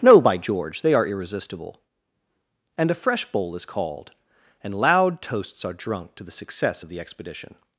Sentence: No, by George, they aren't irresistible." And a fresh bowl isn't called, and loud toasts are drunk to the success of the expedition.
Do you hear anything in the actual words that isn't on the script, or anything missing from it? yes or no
yes